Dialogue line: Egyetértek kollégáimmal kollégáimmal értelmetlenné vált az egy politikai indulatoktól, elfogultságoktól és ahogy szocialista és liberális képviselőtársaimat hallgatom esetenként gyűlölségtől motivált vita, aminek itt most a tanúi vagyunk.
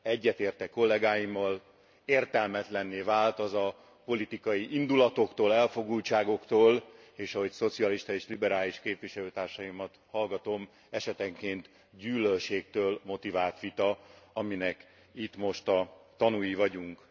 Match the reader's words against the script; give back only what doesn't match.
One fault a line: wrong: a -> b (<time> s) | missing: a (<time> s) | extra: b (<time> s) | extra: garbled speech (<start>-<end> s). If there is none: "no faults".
missing: kollégáimmal (1.6 s)
wrong: egy -> a (3.5 s)